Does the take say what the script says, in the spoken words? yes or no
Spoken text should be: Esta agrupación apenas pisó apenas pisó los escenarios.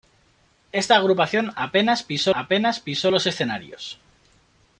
yes